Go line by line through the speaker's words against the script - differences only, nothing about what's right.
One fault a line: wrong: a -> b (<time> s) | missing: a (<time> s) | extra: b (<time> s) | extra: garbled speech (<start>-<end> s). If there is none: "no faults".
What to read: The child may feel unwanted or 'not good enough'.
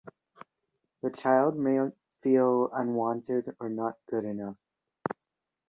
no faults